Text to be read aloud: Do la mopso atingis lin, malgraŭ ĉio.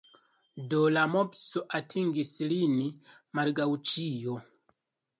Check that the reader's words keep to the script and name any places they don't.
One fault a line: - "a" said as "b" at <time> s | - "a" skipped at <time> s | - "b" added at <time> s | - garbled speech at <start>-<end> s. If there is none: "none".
none